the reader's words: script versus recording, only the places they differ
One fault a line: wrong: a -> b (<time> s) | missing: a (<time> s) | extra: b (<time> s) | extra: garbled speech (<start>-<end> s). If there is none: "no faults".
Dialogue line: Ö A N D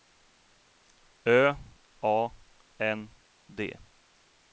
no faults